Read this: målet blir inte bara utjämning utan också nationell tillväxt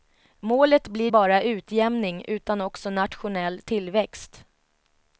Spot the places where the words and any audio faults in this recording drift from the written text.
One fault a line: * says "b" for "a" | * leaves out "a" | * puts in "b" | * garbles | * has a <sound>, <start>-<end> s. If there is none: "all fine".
* leaves out "inte"